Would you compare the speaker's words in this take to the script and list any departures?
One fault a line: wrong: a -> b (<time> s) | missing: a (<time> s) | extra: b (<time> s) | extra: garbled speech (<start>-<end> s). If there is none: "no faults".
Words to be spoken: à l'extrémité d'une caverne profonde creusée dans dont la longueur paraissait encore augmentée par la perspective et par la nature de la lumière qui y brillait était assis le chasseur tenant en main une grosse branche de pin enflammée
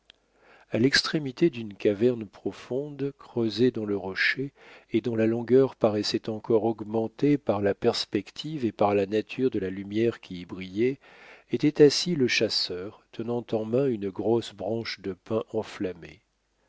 extra: le rocher et (3.9 s)